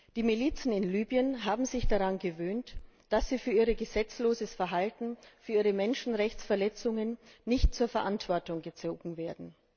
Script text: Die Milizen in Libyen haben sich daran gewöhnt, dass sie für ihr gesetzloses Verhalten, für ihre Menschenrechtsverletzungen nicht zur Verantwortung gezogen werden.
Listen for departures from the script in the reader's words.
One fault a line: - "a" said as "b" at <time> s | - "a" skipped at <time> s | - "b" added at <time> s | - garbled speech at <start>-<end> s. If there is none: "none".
none